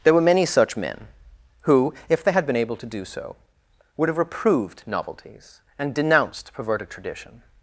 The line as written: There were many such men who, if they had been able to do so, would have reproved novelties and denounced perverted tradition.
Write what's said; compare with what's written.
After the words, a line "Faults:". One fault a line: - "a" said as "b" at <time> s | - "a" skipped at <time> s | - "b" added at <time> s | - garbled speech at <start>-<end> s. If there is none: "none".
There were many such men who, if they had been able to do so, would have reproved novelties and denounced perverted tradition.
Faults:
none